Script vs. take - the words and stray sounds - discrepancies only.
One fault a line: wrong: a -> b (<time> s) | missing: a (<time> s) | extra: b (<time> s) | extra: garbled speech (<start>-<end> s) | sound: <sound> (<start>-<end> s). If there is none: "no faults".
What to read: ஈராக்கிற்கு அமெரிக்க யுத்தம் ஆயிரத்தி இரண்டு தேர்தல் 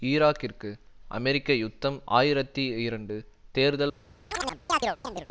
sound: chirp (4.3-5.3 s)